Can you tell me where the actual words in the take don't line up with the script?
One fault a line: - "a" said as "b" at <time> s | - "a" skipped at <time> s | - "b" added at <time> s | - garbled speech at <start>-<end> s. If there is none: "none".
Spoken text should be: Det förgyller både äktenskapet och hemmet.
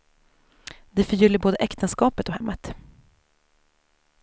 none